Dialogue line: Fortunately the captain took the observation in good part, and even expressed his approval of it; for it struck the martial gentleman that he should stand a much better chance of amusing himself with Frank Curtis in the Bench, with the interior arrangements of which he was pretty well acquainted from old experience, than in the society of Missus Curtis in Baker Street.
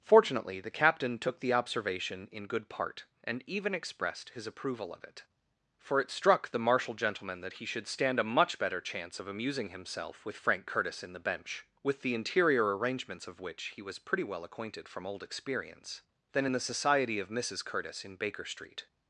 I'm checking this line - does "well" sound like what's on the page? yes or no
yes